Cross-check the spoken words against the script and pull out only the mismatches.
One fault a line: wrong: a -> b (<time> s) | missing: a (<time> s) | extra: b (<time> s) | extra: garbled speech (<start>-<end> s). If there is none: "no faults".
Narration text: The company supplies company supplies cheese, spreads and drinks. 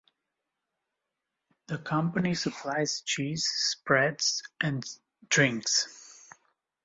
missing: company supplies (3.0 s)